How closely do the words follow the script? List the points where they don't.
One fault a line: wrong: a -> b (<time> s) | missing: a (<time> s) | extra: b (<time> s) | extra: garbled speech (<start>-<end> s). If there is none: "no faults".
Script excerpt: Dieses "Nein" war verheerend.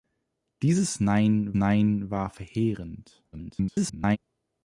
extra: nein (1.5 s)
extra: garbled speech (3.3-4.2 s)